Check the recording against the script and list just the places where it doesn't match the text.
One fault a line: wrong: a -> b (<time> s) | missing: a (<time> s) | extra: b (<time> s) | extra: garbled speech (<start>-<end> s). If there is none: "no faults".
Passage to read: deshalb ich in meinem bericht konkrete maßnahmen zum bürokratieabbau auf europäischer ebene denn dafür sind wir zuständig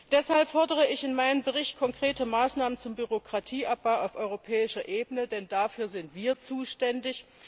extra: fordere (0.5 s)